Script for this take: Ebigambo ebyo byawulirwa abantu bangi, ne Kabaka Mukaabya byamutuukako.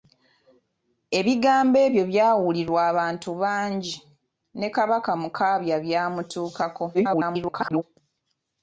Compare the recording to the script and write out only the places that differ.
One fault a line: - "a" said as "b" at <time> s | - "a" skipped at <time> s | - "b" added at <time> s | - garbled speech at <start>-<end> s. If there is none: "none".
- garbled speech at 6.9-7.8 s